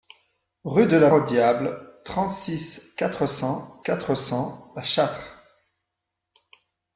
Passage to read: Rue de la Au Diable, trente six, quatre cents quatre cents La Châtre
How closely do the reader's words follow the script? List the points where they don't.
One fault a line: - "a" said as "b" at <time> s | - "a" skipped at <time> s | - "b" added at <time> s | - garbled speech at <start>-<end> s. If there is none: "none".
none